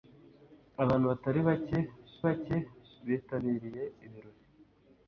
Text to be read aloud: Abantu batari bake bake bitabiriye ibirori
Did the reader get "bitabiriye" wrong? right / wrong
right